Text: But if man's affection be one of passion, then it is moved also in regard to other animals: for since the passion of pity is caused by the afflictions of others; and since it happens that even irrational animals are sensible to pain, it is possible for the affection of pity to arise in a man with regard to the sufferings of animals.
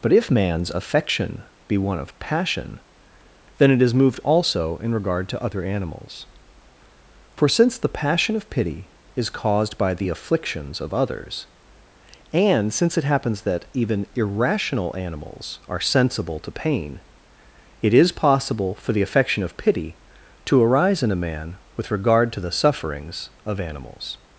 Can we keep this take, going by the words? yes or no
yes